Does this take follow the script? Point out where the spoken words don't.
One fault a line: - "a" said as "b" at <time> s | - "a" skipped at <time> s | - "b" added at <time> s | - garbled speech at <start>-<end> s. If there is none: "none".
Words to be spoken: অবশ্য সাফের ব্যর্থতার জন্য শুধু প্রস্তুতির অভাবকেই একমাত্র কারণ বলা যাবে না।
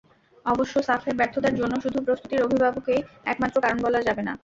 none